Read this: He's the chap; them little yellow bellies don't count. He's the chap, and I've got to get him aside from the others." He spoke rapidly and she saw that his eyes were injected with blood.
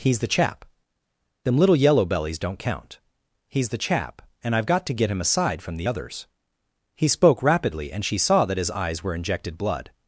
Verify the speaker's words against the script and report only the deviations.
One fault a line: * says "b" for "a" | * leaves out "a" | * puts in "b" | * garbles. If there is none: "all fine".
* leaves out "with"